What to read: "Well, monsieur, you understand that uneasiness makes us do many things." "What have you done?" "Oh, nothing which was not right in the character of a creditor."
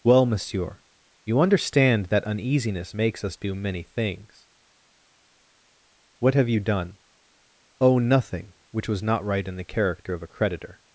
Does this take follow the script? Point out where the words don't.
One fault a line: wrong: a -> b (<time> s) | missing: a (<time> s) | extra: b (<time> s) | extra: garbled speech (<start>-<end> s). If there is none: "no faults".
no faults